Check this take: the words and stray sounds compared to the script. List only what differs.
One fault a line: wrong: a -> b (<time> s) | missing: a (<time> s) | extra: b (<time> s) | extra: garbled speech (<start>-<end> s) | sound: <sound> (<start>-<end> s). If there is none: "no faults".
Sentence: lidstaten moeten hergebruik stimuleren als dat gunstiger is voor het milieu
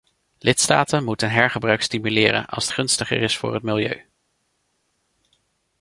missing: dat (2.7 s)